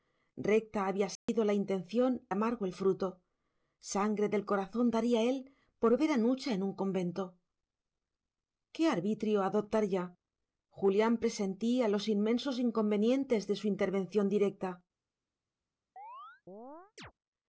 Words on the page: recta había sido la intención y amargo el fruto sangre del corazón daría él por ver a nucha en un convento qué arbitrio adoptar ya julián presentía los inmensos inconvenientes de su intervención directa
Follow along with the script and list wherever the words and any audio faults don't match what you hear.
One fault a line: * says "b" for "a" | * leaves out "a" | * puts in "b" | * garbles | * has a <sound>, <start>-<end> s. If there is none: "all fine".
* has a dropout, 1.2-1.3 s
* leaves out "y"
* has a chirp, 16.0-17.1 s